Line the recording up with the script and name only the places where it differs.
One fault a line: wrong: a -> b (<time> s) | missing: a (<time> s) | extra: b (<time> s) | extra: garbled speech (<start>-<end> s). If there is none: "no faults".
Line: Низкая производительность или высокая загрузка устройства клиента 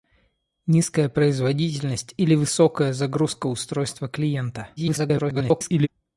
extra: garbled speech (4.8-5.9 s)